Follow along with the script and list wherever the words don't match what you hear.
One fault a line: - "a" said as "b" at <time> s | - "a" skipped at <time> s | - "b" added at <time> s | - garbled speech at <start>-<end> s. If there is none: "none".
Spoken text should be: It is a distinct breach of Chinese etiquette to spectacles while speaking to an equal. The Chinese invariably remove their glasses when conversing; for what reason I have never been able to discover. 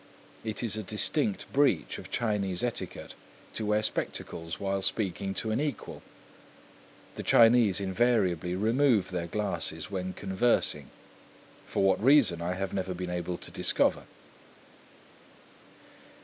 - "wear" added at 3.7 s